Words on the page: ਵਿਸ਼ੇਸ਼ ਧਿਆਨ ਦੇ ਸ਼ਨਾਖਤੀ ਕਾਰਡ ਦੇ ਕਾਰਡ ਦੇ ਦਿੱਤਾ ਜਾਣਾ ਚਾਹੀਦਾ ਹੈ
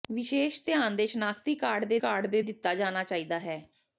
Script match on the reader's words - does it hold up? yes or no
yes